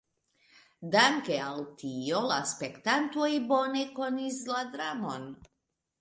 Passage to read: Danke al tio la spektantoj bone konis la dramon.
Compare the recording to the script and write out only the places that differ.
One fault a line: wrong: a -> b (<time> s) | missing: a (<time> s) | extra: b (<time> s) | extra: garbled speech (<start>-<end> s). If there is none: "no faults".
no faults